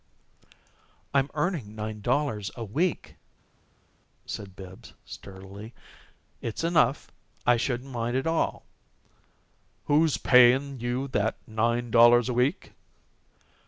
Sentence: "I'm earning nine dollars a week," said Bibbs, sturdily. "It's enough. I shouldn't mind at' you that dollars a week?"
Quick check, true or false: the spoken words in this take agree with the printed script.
false